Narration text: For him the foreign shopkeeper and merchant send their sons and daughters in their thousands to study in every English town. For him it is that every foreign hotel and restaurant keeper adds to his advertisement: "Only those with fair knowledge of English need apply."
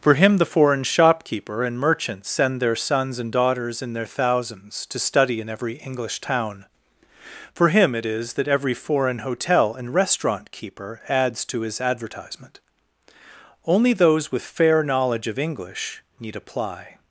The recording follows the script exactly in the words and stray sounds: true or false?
true